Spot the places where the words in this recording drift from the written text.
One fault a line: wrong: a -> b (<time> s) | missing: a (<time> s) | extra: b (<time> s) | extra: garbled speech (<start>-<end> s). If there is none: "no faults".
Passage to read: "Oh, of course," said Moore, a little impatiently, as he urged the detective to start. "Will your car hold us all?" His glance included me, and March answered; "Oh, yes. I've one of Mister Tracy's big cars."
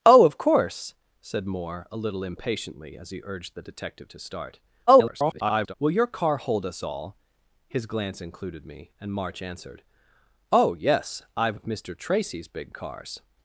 extra: garbled speech (4.9-5.7 s)
missing: one (11.6 s)